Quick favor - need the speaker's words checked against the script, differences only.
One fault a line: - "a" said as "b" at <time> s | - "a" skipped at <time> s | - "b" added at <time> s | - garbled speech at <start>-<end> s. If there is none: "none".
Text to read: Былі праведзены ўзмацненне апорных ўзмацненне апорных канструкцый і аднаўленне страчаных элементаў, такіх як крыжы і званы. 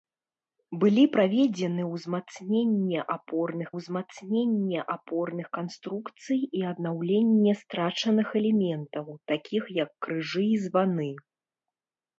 none